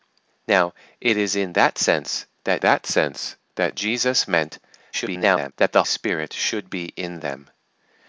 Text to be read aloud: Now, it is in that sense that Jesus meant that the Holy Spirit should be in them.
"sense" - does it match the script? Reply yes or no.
yes